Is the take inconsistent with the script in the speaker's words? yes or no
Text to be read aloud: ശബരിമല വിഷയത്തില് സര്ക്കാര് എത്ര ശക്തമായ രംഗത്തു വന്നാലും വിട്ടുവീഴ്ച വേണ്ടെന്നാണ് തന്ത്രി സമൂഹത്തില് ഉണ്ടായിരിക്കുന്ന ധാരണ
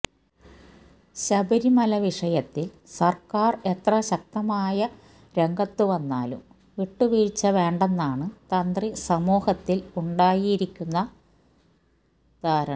no